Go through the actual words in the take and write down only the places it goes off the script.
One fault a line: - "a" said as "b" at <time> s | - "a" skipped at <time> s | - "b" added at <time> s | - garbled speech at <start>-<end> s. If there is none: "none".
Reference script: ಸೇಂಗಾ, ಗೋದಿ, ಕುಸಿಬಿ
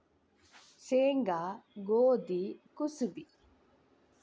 none